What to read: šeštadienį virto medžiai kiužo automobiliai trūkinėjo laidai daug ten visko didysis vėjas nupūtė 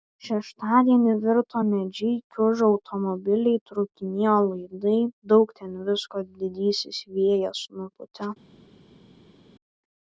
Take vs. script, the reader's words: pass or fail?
pass